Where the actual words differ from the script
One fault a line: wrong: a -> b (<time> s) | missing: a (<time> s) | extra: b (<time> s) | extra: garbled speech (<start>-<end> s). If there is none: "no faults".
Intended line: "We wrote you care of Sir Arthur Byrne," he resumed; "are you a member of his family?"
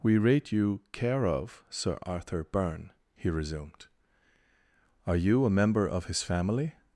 wrong: wrote -> rate (0.2 s)